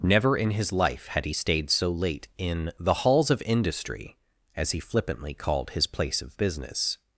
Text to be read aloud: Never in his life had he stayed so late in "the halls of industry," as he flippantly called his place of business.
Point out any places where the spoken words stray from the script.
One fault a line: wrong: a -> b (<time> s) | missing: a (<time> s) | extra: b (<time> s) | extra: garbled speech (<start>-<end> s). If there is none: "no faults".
no faults